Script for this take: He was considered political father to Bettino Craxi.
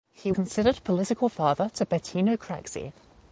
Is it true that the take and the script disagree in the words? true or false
true